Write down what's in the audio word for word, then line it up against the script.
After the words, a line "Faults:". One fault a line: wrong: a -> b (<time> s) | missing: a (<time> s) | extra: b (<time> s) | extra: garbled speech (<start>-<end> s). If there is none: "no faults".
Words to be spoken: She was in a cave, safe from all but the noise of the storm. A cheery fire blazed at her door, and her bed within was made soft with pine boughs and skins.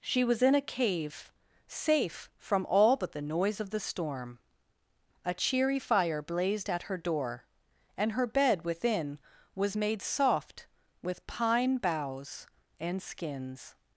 She was in a cave, safe from all but the noise of the storm. A cheery fire blazed at her door, and her bed within was made soft with pine boughs and skins.
Faults:
no faults